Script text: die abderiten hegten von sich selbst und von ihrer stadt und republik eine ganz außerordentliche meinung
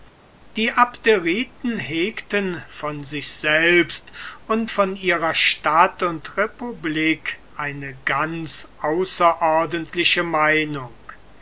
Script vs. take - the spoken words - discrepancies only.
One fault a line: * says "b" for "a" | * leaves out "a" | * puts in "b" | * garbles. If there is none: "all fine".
all fine